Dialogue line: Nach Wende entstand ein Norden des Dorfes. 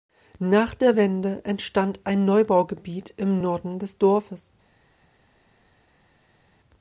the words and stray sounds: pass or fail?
fail